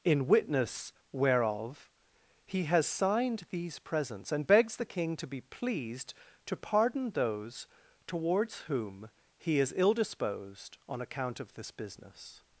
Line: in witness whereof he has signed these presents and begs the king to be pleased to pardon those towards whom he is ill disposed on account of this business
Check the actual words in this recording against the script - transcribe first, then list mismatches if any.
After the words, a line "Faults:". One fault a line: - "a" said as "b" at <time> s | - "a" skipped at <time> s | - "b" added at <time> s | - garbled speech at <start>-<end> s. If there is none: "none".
in witness whereof he has signed these presents and begs the king to be pleased to pardon those towards whom he is ill disposed on account of this business
Faults:
none